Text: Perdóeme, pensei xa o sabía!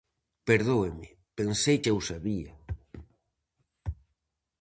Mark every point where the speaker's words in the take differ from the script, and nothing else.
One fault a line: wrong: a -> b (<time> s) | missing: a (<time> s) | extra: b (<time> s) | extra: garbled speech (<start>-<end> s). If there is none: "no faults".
no faults